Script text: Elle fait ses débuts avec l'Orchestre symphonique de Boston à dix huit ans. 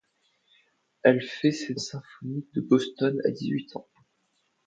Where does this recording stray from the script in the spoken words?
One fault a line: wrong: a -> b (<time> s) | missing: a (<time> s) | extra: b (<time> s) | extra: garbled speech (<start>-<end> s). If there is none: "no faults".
missing: débuts avec l'Orchestre (1.8 s)